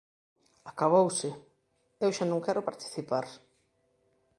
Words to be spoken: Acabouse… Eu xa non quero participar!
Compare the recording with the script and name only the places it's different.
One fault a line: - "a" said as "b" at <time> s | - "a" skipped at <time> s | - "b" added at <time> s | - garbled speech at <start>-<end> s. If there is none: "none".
none